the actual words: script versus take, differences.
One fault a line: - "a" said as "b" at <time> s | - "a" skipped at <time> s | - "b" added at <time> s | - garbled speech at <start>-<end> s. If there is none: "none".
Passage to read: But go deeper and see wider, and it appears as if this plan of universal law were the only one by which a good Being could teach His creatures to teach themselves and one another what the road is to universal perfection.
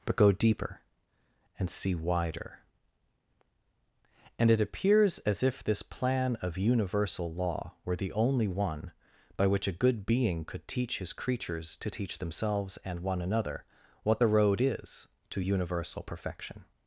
none